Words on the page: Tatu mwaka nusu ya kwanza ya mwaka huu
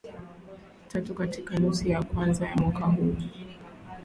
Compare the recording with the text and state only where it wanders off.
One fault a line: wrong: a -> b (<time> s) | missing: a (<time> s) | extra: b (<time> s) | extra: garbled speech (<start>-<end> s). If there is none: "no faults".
wrong: mwaka -> katika (1.1 s)